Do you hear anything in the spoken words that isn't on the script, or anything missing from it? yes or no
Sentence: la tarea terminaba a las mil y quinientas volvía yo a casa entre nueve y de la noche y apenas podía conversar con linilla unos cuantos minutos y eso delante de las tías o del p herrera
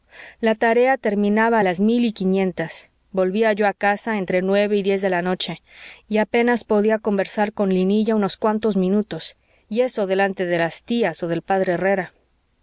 yes